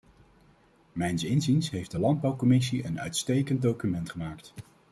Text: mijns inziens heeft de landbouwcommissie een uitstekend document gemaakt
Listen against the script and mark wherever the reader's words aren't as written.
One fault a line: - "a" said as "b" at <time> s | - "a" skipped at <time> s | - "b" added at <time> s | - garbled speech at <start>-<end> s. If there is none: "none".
none